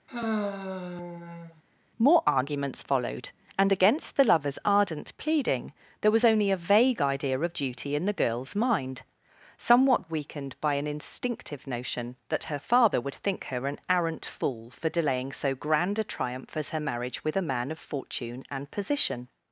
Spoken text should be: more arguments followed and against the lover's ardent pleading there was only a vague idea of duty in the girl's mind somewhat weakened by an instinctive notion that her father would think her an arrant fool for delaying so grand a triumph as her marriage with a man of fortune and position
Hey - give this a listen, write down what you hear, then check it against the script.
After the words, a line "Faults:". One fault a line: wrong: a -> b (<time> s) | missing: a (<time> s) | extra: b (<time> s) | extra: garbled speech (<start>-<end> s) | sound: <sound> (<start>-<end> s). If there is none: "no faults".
more arguments followed and against the lover's ardent pleading there was only a vague idea of duty in the girl's mind somewhat weakened by an instinctive notion that her father would think her an arrant fool for delaying so grand a triumph as her marriage with a man of fortune and position
Faults:
sound: sigh (0.1-1.6 s)